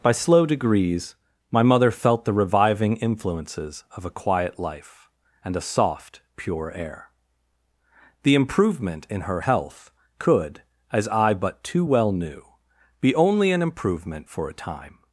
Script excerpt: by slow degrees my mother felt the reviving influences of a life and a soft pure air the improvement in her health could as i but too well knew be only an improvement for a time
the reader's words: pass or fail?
fail